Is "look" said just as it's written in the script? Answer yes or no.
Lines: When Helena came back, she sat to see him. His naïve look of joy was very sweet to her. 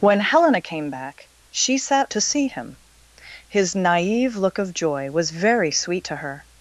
yes